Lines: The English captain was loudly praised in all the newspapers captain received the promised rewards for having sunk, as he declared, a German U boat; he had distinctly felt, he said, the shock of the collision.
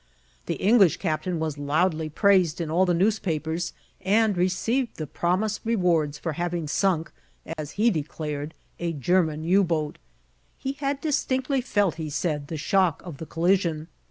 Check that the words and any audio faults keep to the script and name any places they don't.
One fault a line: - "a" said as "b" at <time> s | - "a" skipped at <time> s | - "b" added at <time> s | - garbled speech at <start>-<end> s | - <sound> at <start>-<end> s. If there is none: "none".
- "captain" said as "and" at 4.0 s
- dropout at 7.5-7.6 s